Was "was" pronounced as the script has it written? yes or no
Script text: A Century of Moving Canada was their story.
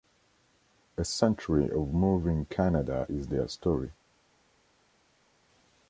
no